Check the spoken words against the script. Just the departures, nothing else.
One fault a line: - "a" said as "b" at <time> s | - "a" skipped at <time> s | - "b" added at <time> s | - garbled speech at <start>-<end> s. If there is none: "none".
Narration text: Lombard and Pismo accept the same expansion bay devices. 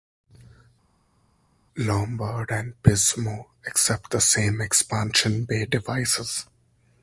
none